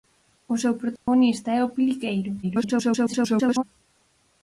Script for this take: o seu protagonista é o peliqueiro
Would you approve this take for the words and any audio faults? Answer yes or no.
no